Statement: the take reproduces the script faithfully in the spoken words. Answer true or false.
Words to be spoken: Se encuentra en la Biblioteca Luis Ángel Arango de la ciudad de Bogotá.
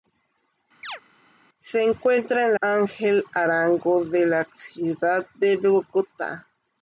false